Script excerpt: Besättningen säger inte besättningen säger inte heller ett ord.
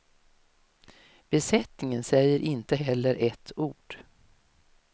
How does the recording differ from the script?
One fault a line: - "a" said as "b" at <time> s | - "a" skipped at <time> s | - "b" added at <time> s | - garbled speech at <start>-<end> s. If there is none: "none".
- "besättningen säger inte" skipped at 2.8 s